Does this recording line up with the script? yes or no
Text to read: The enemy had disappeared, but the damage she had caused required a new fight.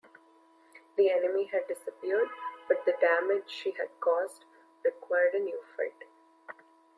yes